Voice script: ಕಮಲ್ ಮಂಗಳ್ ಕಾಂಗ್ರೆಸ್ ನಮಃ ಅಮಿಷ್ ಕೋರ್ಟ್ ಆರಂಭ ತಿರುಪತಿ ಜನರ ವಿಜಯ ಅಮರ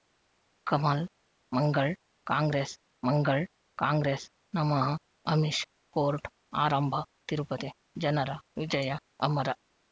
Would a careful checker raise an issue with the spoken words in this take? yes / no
yes